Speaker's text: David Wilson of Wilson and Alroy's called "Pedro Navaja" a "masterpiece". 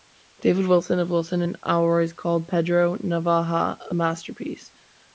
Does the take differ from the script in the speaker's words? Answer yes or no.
no